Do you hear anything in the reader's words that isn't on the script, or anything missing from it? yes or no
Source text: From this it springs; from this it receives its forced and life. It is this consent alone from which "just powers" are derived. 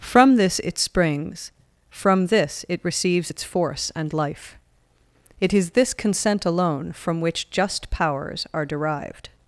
yes